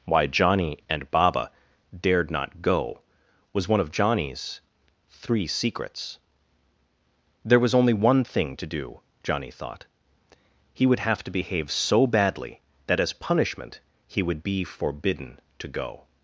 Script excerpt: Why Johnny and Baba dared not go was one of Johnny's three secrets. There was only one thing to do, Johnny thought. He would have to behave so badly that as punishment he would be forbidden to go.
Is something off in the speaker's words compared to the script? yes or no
no